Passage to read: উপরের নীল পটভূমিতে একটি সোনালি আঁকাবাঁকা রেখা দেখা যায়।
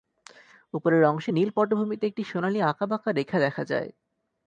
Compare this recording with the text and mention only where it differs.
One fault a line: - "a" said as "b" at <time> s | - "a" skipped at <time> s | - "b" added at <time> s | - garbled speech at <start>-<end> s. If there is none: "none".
- "অংশে" added at 1.0 s